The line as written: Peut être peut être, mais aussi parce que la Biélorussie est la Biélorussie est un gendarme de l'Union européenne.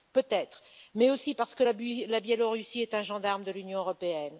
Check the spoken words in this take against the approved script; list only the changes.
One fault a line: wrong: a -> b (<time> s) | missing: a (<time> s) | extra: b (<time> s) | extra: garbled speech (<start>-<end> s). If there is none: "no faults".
missing: peut être (0.6 s)
missing: la Biélorussie est (2.9 s)